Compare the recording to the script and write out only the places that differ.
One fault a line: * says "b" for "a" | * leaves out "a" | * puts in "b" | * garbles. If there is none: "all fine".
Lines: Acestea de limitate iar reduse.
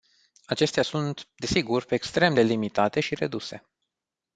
* puts in "sunt desigur extrem"
* says "și" for "iar"